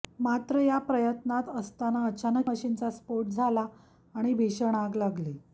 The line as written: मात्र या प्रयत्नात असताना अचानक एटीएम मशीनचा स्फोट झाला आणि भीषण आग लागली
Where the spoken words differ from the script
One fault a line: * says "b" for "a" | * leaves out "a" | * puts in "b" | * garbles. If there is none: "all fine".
* leaves out "एटीएम"